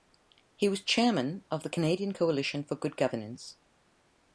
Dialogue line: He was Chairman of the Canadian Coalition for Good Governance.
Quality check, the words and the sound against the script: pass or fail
pass